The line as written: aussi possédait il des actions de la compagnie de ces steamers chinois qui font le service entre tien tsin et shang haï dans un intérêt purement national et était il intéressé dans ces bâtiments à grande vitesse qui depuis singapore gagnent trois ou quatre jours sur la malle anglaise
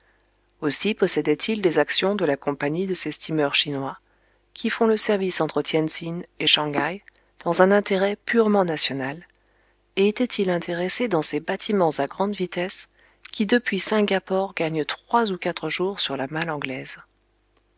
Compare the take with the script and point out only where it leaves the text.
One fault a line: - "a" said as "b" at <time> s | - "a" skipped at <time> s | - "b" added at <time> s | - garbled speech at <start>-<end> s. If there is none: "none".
none